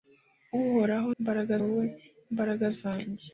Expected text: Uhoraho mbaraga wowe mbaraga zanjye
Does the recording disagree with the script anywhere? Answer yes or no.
no